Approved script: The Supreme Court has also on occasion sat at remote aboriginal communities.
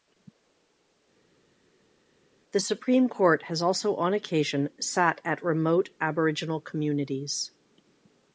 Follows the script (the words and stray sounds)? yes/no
yes